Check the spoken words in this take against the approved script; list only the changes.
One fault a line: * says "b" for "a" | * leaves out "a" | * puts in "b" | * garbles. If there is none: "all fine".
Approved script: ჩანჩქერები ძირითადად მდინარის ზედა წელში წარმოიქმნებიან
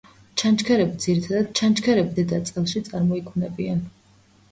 * says "ჩანჩქერები" for "მდინარის"